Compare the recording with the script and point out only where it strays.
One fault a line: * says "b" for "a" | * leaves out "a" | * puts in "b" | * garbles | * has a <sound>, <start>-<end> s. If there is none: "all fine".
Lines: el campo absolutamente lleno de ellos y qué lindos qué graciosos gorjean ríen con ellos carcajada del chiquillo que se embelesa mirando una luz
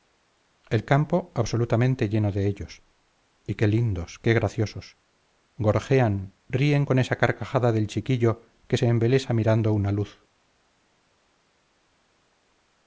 * says "esa" for "ellos"